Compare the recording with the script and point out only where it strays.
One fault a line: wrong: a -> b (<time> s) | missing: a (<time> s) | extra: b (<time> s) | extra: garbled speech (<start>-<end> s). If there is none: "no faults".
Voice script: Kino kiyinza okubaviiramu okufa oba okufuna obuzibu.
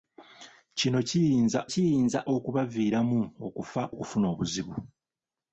extra: kiyinza (1.7 s)
missing: oba (3.8 s)